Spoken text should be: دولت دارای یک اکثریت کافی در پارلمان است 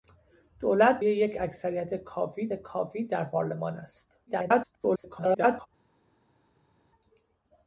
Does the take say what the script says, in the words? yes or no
no